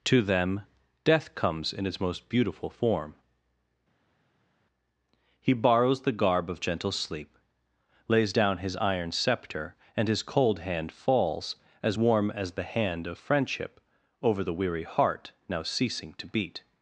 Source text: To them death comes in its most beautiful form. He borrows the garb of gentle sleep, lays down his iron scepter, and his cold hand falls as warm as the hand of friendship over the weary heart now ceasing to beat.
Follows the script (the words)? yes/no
yes